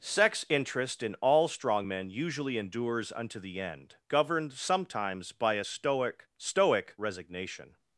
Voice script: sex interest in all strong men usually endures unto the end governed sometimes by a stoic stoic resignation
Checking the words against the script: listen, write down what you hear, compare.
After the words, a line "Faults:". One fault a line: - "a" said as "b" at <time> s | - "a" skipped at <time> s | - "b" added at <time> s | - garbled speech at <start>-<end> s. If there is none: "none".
sex interest in all strong men usually endures unto the end governed sometimes by a stoic stoic resignation
Faults:
none